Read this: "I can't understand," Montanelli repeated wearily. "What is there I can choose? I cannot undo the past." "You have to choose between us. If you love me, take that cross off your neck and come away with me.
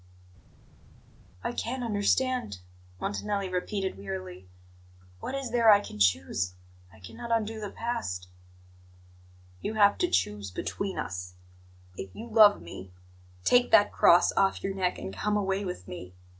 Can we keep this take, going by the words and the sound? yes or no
yes